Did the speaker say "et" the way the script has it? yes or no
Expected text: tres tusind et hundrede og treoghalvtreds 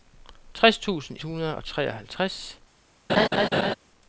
no